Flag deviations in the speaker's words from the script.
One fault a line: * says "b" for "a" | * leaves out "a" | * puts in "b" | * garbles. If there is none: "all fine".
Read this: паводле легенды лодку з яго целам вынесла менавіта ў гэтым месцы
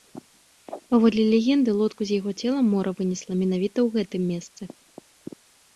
* puts in "мора"